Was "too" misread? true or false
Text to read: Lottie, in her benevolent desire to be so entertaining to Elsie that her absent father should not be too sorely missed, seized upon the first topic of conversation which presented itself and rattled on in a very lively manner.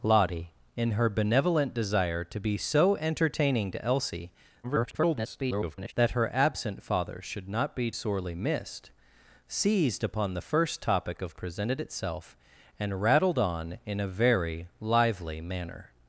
true